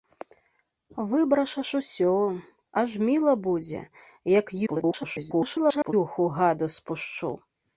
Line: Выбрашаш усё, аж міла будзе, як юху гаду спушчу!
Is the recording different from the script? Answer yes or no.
yes